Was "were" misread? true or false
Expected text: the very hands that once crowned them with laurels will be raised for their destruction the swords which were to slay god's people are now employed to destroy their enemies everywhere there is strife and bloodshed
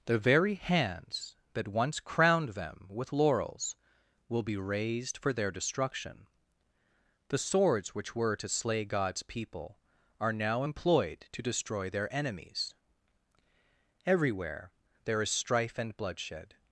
false